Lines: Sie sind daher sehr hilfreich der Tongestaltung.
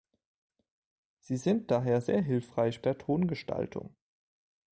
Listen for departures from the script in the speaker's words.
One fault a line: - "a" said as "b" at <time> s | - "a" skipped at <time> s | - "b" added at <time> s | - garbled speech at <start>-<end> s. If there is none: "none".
none